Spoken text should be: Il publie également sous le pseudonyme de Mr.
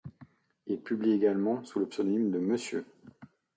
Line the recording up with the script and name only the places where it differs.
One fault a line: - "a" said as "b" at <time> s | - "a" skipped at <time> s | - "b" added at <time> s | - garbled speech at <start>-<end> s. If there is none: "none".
none